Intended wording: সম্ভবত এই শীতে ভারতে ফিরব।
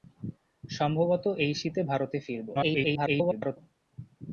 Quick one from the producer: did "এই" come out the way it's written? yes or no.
yes